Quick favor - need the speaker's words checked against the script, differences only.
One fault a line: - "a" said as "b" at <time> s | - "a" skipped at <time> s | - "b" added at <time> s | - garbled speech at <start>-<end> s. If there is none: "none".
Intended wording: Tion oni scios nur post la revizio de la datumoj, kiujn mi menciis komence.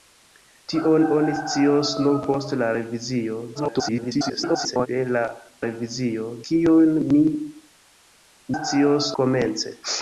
- garbled speech at 3.5-4.9 s
- "datumoj" said as "revizio" at 5.6 s
- "menciis" said as "scios" at 8.6 s